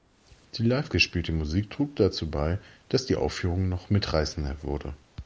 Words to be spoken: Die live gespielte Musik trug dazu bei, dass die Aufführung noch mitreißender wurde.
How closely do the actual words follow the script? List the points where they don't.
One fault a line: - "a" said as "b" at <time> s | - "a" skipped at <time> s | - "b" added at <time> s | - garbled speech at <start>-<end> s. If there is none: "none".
none